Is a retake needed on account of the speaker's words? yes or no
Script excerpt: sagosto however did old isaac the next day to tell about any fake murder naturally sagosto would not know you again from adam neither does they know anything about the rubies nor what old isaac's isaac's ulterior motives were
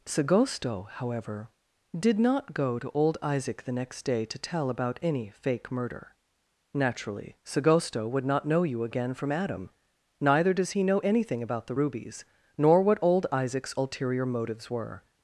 yes